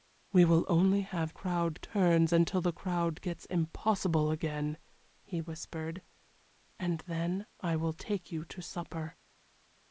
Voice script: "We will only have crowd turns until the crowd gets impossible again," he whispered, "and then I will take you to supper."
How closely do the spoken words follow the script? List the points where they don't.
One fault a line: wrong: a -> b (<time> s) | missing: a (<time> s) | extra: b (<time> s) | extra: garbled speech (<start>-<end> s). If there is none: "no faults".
no faults